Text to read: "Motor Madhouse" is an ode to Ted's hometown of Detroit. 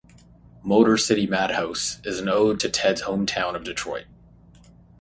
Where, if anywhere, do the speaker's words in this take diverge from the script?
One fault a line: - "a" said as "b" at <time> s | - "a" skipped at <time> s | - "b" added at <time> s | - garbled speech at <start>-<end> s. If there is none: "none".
- "City" added at 1.0 s